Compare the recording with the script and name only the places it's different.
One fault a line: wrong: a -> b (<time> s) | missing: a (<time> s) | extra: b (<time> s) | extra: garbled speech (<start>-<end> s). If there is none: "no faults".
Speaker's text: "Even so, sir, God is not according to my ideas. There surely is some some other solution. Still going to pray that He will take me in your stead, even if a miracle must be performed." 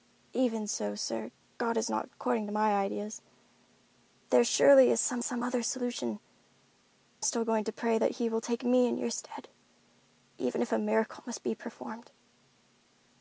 no faults